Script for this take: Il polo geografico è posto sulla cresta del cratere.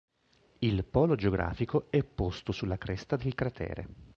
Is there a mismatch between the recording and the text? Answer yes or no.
no